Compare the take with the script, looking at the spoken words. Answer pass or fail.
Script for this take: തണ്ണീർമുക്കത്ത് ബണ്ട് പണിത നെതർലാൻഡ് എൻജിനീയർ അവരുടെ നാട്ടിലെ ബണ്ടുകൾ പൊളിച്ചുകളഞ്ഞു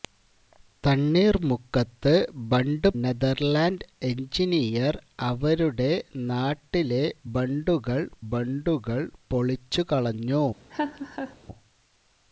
fail